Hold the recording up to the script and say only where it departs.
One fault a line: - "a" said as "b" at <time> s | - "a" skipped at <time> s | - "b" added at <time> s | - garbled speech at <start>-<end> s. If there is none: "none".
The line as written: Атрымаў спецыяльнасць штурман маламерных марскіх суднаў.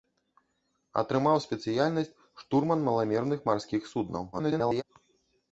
- garbled speech at 4.3-4.8 s